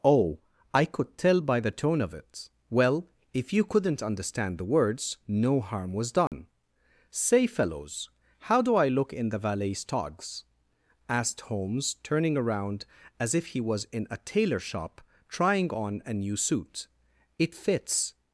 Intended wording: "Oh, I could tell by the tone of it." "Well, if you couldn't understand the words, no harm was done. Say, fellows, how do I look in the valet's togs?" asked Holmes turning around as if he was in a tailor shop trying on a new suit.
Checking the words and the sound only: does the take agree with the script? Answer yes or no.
no